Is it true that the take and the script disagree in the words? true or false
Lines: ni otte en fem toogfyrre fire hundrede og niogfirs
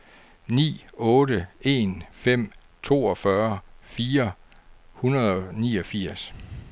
false